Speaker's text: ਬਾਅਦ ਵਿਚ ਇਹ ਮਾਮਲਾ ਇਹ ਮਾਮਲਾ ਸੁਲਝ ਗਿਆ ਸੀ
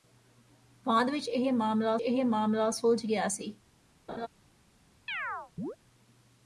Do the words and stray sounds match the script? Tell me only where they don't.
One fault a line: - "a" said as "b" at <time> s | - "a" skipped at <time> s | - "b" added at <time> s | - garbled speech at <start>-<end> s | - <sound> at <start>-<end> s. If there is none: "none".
- laugh at 4.1-4.3 s
- chirp at 5.1-5.8 s